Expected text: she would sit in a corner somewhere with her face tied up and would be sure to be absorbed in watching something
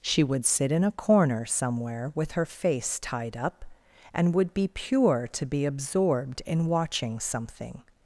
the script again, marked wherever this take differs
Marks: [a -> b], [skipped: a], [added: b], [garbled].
she would sit in a corner somewhere with her face tied up and would be [sure -> pure] to be absorbed in watching something